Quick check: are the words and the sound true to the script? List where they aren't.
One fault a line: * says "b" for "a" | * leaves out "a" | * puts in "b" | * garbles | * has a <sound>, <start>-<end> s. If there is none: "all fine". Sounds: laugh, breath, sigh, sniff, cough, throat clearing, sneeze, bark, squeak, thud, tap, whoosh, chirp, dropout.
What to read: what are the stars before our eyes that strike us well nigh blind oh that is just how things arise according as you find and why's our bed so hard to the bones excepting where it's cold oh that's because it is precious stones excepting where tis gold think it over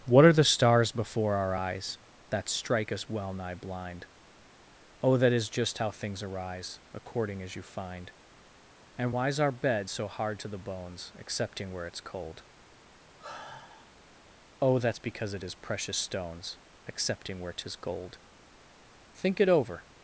* has a sigh, 13.2-13.9 s